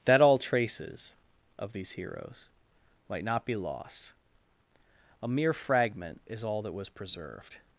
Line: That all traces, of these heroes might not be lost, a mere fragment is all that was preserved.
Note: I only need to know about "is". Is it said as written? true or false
true